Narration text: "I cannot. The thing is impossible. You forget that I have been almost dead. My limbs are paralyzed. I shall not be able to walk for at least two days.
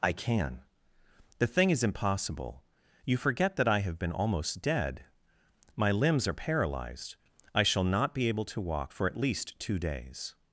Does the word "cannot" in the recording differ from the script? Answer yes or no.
yes